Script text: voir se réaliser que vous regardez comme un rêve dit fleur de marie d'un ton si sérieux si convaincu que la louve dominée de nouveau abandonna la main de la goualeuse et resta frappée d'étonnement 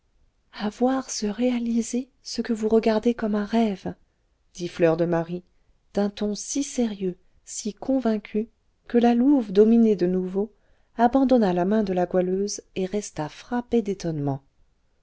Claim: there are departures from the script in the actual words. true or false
true